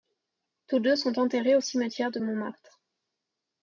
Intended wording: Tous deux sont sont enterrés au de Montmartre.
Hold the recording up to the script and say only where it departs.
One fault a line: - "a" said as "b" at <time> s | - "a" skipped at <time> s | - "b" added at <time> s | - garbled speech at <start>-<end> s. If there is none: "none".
- "sont" skipped at 1.2 s
- "cimetière" added at 1.6 s